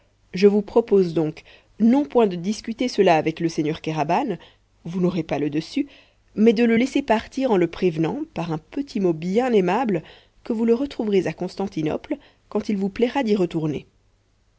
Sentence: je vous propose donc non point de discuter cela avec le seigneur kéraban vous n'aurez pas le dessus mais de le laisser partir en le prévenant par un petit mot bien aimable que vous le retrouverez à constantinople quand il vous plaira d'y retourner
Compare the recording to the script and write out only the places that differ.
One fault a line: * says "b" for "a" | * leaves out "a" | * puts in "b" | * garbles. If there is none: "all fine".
all fine